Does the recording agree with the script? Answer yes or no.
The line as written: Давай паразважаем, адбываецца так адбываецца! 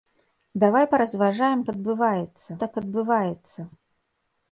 yes